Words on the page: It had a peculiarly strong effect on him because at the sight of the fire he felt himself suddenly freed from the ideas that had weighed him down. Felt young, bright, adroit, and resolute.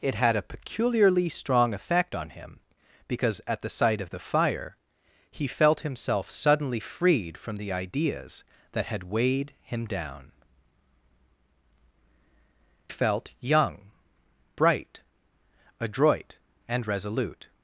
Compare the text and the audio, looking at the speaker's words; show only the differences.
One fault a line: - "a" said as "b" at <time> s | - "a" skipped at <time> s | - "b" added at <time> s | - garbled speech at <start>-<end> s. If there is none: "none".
none